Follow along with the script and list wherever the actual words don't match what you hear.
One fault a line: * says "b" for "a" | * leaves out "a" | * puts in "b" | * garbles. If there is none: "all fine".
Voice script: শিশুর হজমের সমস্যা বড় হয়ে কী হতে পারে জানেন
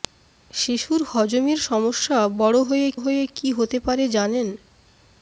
* puts in "হয়ে"